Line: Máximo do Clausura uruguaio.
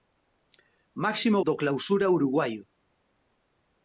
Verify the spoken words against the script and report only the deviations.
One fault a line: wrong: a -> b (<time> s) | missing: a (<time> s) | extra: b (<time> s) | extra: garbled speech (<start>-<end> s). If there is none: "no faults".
no faults